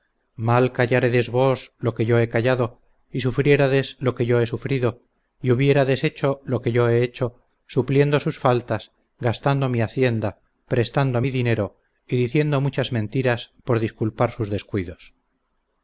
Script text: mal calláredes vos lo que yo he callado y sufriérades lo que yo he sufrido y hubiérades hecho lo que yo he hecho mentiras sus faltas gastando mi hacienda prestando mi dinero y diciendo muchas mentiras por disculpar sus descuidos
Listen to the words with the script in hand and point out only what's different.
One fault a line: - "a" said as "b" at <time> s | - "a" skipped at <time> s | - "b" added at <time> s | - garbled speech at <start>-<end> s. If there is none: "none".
- "mentiras" said as "supliendo" at 7.7 s